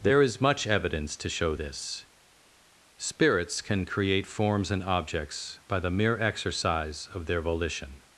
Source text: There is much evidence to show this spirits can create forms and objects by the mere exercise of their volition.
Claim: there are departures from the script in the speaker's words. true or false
false